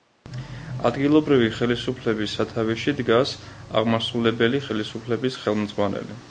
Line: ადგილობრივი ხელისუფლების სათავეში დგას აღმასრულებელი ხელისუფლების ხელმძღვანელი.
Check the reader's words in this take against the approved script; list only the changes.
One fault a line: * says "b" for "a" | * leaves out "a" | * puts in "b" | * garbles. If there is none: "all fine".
all fine